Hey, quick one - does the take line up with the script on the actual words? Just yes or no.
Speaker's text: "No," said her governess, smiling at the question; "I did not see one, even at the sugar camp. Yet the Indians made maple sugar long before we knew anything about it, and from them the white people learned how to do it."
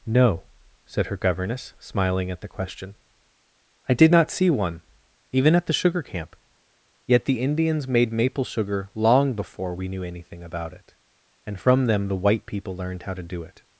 yes